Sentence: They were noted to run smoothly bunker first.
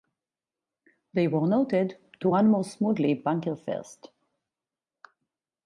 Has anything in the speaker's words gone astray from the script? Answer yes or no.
yes